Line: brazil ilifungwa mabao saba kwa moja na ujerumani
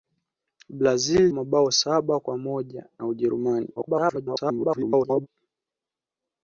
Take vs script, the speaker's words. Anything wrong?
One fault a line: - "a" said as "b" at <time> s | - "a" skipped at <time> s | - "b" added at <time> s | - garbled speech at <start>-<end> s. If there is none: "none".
- "ilifungwa" skipped at 1.3 s
- garbled speech at 3.8-5.3 s